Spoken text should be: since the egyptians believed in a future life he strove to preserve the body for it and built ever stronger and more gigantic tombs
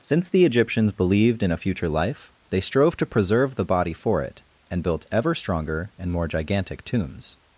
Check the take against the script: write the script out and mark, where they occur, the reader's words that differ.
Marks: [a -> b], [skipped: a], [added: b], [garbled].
since the egyptians believed in a future life [he -> they] strove to preserve the body for it and built ever stronger and more gigantic tombs